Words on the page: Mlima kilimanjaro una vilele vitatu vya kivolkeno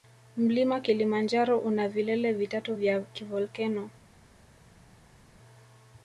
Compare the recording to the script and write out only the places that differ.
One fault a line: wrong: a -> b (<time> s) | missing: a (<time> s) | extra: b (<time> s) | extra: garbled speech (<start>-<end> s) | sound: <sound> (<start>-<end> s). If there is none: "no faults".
no faults